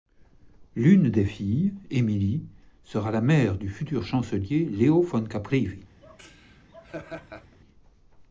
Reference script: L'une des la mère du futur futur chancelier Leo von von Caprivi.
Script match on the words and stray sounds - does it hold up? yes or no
no